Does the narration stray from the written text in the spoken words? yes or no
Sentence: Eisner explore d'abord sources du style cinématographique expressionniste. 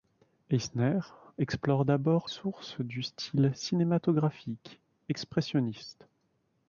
no